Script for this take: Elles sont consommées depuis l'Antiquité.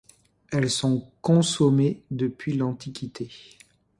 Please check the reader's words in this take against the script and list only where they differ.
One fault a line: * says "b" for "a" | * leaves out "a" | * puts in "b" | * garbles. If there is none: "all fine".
all fine